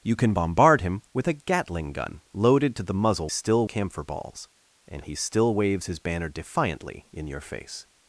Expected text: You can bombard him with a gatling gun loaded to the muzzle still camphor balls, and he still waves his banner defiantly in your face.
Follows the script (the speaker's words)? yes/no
yes